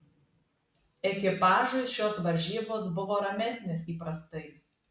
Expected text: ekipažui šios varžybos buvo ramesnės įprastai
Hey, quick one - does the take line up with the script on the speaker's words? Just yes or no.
yes